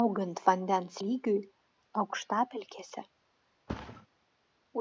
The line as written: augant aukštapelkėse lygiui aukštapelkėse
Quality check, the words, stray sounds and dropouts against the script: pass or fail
fail